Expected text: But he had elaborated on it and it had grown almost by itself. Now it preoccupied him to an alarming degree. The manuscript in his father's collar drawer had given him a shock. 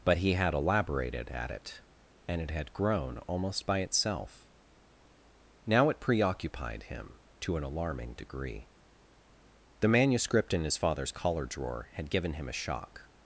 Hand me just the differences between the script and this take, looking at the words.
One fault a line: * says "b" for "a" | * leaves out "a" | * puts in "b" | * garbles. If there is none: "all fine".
* says "at" for "on"